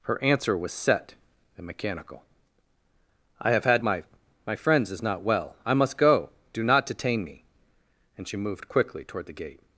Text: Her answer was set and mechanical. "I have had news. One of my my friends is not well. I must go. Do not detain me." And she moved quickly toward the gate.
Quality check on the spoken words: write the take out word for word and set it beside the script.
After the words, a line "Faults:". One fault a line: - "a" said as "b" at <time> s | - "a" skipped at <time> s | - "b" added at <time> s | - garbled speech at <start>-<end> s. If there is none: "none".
Her answer was set and mechanical. "I have had my my friends is not well. I must go. Do not detain me." And she moved quickly toward the gate.
Faults:
- "news One of" skipped at 3.8 s